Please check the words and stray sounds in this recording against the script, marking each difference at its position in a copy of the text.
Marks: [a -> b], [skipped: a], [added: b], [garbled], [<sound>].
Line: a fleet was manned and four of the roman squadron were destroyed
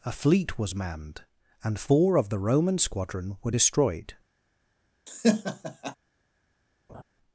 a fleet was manned and four of the roman squadron were destroyed [laugh] [laugh]